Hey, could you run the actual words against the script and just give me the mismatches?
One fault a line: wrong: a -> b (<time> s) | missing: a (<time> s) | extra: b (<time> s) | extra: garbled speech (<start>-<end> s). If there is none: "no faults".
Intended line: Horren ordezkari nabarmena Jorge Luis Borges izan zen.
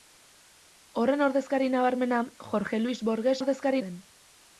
wrong: izan -> ordezkari (3.4 s)